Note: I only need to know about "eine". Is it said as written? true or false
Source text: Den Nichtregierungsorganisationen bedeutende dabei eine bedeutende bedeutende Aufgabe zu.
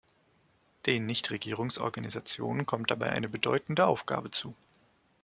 true